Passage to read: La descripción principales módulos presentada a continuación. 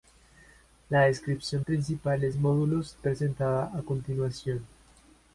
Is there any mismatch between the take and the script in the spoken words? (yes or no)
no